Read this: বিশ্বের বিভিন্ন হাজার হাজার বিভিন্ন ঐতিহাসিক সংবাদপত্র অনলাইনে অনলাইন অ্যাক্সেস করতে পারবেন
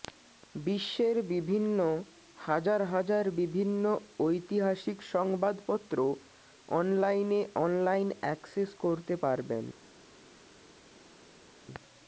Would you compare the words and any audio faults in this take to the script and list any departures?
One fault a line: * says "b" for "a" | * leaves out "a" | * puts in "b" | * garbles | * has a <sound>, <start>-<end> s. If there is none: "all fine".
all fine